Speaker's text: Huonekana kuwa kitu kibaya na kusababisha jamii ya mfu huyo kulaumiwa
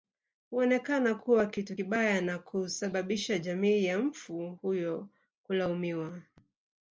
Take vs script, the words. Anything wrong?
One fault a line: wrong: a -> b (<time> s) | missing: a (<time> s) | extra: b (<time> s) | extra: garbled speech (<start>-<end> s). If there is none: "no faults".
no faults